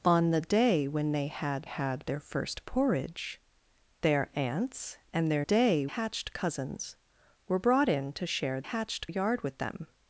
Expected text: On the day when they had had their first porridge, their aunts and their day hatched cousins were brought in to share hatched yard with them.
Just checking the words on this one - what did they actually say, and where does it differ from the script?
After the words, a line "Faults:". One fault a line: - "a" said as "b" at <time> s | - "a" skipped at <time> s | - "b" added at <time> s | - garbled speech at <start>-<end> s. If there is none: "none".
On the day when they had had their first porridge, their aunts and their day hatched cousins were brought in to share hatched yard with them.
Faults:
none